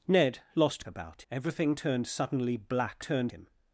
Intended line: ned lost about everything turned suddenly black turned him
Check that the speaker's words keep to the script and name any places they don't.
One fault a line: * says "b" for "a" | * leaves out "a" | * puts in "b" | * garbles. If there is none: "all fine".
all fine